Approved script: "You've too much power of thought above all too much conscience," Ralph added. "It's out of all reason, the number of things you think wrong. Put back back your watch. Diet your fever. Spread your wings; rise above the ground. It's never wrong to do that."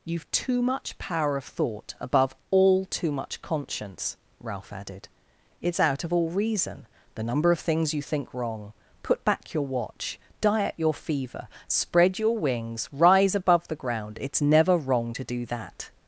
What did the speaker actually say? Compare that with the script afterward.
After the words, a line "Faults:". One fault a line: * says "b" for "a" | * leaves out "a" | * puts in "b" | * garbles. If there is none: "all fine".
"You've too much power of thought above all too much conscience," Ralph added. "It's out of all reason, the number of things you think wrong. Put back your watch. Diet your fever. Spread your wings; rise above the ground. It's never wrong to do that."
Faults:
* leaves out "back"